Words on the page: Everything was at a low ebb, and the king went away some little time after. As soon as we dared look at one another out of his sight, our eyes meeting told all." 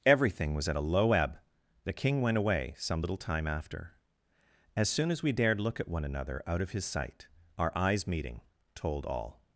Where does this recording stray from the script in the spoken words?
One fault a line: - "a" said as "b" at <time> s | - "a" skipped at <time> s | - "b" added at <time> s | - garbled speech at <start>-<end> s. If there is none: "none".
- "and" skipped at 1.4 s